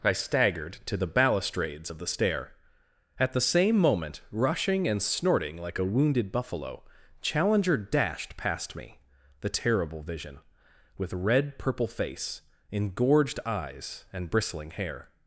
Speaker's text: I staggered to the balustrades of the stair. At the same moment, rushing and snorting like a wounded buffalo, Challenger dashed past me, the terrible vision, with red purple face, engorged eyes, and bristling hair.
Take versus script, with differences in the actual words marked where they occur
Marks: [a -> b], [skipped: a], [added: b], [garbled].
I staggered to the balustrades of the stair. At the same moment, rushing and snorting like a wounded buffalo, Challenger dashed past me, the terrible vision, with red purple face, engorged eyes, and bristling hair.